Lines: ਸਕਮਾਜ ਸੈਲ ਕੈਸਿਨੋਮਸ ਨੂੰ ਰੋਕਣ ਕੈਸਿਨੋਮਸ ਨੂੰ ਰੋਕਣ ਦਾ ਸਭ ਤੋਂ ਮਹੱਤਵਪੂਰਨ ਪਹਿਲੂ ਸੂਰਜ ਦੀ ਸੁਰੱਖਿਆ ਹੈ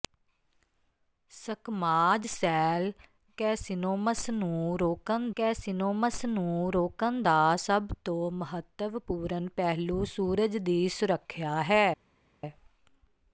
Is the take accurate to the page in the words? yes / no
yes